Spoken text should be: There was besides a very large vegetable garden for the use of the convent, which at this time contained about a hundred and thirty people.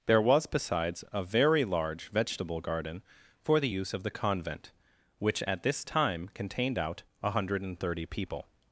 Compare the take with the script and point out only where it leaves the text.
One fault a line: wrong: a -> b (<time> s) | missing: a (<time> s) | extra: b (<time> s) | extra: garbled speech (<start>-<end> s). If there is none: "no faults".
wrong: about -> out (6.8 s)